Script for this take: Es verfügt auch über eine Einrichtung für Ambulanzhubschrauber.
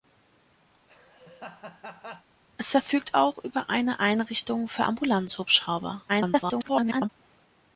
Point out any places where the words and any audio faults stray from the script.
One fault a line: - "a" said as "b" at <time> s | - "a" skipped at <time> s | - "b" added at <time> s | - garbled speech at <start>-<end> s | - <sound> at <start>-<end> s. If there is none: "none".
- laugh at 0.7-2.3 s
- garbled speech at 6.1-7.1 s